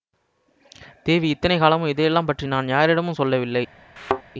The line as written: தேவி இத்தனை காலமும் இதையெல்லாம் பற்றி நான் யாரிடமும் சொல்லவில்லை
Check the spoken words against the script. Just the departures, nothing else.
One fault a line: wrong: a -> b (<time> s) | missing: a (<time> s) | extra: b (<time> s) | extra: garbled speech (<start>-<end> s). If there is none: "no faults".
no faults